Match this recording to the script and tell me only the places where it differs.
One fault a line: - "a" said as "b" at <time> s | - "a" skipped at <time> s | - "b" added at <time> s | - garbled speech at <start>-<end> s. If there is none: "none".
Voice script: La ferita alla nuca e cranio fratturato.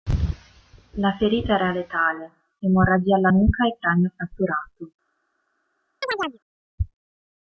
- "era letale emorragia" added at 1.5 s